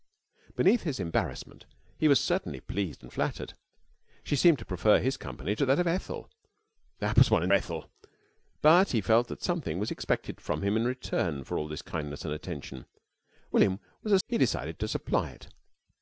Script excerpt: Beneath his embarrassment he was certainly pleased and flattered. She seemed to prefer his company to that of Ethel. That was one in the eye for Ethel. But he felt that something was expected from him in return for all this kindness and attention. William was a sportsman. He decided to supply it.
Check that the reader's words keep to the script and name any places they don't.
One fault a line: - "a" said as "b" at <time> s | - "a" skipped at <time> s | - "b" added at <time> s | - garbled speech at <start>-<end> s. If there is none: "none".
- "the eye for" skipped at 7.5 s
- "sportsman" skipped at 14.2 s